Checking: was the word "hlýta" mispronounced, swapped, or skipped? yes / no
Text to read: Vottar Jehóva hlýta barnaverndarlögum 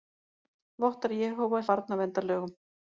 yes